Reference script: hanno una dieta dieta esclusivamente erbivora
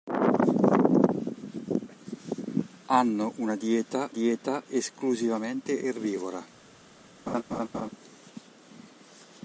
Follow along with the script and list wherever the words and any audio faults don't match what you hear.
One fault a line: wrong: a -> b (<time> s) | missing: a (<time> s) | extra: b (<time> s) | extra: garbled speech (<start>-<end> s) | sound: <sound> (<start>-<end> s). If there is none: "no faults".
sound: laugh (7.3-7.9 s)